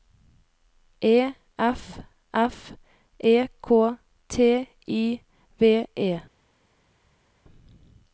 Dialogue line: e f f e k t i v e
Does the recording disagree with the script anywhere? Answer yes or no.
no